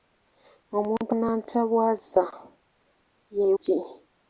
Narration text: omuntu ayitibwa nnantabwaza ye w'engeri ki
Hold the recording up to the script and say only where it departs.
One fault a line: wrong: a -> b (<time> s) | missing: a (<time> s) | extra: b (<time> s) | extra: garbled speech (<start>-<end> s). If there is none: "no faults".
missing: ayitibwa (1.1 s)
missing: w'engeri (3.5 s)